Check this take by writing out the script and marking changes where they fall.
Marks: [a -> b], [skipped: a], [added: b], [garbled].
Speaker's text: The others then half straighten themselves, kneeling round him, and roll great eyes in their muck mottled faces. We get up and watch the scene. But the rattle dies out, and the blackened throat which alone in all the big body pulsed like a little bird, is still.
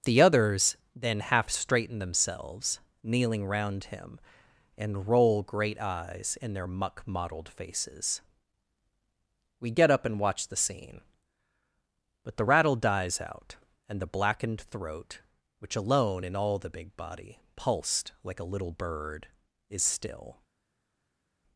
The others then half straighten themselves, kneeling round him, and roll great eyes in their muck mottled faces. We get up and watch the scene. But the rattle dies out, and the blackened throat which alone in all the big body pulsed like a little bird, is still.